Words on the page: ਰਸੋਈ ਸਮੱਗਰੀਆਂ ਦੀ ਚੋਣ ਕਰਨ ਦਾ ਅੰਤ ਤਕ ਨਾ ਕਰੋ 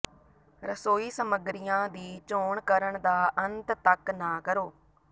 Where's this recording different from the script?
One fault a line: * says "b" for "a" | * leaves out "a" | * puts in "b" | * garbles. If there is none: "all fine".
all fine